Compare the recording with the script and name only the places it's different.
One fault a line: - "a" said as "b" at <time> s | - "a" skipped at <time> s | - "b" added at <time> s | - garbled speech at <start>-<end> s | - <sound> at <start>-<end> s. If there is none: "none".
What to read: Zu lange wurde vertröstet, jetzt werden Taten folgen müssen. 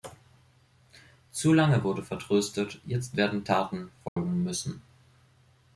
- dropout at 4.1-4.2 s